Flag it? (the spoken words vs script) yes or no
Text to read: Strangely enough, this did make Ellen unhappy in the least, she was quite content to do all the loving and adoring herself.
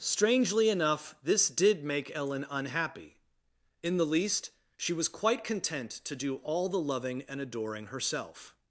no